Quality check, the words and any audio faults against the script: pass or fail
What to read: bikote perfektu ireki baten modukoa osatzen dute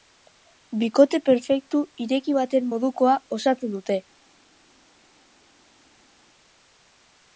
pass